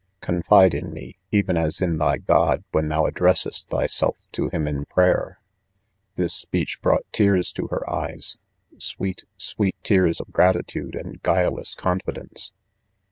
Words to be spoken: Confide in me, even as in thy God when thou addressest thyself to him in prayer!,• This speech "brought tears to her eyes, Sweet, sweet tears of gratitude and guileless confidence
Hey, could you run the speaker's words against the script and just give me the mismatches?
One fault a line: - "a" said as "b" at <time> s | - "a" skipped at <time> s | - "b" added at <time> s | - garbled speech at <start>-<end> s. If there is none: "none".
none